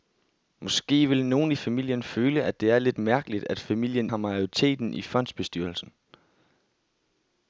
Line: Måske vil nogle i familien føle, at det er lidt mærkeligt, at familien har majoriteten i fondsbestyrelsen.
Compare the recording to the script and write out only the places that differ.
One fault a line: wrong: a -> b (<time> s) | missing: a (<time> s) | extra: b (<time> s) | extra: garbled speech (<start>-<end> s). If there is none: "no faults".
no faults